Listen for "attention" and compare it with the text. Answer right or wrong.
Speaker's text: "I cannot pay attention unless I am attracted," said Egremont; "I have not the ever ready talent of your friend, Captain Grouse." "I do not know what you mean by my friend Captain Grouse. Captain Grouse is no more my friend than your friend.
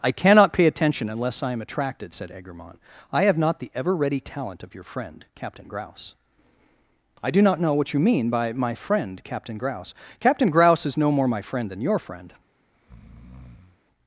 right